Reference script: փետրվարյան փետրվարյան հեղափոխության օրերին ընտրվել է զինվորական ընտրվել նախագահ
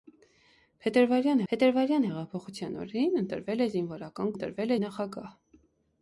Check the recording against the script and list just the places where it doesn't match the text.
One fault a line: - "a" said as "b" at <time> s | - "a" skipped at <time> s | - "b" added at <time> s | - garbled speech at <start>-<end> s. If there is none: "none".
none